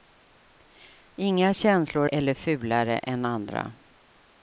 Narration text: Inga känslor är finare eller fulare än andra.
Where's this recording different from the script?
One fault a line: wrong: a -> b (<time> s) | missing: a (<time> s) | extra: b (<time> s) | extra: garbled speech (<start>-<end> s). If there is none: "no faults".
missing: är finare (2.1 s)